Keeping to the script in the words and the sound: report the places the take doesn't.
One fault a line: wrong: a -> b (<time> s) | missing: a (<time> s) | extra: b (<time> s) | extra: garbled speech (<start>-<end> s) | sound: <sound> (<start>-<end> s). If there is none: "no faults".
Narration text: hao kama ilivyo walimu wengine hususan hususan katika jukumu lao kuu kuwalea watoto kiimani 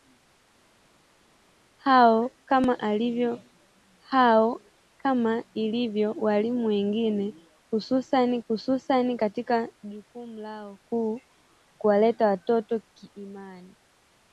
no faults